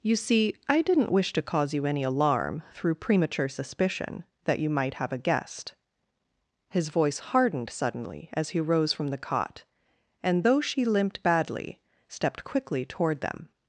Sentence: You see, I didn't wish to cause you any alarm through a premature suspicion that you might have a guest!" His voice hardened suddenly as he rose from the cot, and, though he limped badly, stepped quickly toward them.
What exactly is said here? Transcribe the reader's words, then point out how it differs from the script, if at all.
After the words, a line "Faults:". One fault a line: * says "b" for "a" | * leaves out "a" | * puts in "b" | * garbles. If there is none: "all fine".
You see, I didn't wish to cause you any alarm through premature suspicion that you might have a guest!" His voice hardened suddenly as he rose from the cot, and, though she limped badly, stepped quickly toward them.
Faults:
* leaves out "a"
* says "she" for "he"